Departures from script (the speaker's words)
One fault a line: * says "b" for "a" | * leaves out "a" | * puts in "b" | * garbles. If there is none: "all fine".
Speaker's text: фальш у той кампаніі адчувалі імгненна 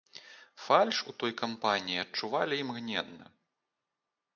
all fine